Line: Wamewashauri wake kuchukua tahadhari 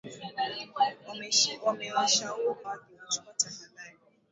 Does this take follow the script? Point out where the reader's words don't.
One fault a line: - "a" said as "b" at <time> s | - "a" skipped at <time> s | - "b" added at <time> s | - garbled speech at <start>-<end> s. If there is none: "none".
none